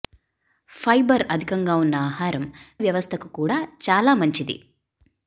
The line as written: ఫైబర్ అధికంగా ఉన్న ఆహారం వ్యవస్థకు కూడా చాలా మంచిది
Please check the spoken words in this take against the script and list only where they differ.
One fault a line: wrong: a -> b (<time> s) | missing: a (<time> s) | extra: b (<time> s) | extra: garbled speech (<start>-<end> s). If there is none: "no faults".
no faults